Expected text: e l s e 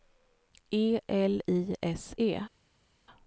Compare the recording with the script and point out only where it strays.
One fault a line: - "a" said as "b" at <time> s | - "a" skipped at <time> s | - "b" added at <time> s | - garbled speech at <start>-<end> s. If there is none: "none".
- "i" added at 1.5 s